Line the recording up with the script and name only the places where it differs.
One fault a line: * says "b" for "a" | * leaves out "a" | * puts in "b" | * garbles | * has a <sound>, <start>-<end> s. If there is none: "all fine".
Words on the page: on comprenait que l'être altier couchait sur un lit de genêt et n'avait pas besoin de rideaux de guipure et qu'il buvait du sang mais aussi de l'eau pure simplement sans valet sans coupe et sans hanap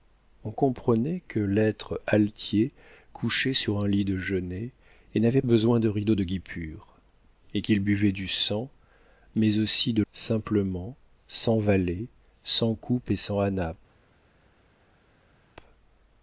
* leaves out "pas"
* leaves out "l'eau pure"